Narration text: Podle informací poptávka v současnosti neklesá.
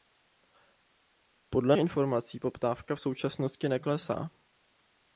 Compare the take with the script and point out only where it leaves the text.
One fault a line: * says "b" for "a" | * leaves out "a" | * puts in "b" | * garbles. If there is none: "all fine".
all fine